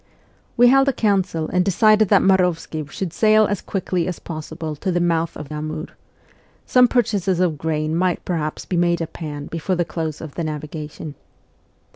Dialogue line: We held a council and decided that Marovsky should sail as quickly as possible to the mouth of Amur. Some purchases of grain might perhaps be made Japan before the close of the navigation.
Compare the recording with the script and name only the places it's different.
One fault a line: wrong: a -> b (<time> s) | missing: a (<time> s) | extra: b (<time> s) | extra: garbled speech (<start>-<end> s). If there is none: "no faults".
no faults